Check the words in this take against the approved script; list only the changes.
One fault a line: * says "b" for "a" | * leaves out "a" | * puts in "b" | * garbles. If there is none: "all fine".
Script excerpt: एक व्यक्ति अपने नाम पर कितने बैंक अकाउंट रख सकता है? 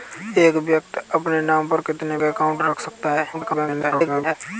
* leaves out "बैंक"
* garbles